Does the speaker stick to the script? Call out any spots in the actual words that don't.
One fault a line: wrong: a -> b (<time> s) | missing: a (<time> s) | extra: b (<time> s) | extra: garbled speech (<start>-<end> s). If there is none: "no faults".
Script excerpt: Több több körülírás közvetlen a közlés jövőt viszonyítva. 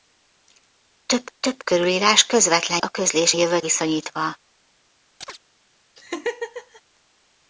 no faults